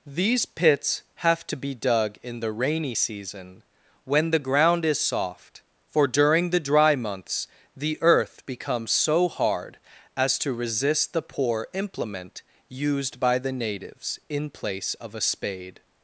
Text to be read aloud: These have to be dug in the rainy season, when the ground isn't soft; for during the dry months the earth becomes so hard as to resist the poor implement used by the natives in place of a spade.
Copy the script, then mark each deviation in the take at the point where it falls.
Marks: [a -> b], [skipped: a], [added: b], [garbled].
These [added: pits] have to be dug in the rainy season, when the ground [isn't -> is] soft; for during the dry months the earth becomes so hard as to resist the poor implement used by the natives in place of a spade.